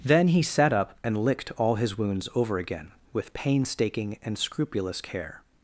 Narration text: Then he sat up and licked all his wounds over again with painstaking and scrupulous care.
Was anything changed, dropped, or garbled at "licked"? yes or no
no